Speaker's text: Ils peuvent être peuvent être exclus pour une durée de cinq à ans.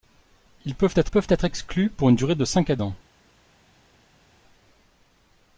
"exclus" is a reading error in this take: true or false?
false